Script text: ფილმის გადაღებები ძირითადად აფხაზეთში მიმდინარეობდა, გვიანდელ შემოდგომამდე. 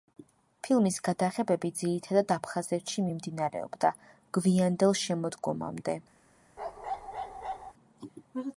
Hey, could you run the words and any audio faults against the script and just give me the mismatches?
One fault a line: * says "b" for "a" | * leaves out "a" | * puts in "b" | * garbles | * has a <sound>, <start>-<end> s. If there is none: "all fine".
* has a bark, 6.6-7.7 s